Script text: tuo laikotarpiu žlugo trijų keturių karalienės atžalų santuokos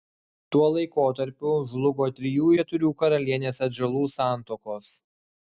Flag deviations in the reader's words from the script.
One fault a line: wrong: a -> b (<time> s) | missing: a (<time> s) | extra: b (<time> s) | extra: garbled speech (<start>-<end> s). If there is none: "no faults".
no faults